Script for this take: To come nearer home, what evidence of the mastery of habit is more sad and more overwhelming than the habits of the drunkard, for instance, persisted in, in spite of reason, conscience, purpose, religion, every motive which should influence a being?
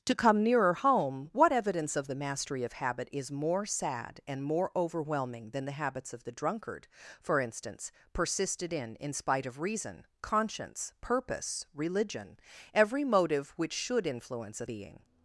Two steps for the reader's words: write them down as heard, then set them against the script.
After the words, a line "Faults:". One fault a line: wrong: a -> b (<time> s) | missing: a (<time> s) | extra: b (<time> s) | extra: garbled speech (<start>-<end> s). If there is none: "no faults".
To come nearer home, what evidence of the mastery of habit is more sad and more overwhelming than the habits of the drunkard, for instance, persisted in, in spite of reason, conscience, purpose, religion, every motive which should influence a being?
Faults:
no faults